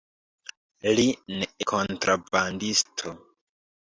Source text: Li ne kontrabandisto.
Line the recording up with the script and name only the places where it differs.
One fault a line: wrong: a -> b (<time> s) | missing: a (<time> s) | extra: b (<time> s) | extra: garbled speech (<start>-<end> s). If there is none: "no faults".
no faults